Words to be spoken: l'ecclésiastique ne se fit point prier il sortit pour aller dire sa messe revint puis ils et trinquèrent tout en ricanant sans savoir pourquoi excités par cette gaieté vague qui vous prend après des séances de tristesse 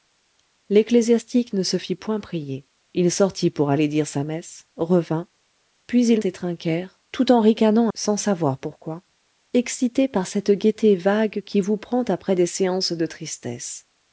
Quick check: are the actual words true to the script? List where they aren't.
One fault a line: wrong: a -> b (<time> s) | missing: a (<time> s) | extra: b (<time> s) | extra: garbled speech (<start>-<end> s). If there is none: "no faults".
no faults